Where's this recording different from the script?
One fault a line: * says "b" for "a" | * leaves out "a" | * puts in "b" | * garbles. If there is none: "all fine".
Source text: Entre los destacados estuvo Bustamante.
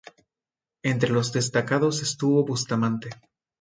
all fine